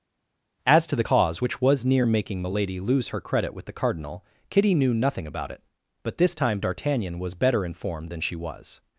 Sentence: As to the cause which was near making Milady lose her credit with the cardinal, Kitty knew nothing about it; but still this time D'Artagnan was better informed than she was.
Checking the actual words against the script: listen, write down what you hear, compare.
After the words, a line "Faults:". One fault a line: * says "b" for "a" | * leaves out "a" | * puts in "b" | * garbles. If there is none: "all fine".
As to the cause which was near making Milady lose her credit with the cardinal, Kitty knew nothing about it; but this time D'Artagnan was better informed than she was.
Faults:
* leaves out "still"